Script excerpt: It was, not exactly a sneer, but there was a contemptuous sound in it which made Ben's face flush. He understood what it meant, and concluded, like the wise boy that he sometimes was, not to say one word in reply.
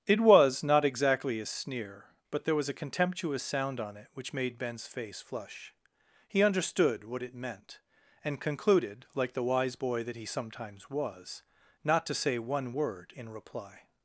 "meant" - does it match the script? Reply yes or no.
yes